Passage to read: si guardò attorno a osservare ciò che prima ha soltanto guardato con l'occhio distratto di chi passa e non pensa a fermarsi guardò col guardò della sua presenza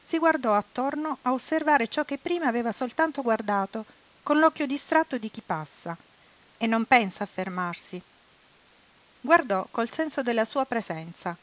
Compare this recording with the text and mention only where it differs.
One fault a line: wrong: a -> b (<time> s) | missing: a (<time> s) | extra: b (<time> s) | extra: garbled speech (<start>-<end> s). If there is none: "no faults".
wrong: ha -> aveva (2.5 s)
wrong: guardò -> senso (9.9 s)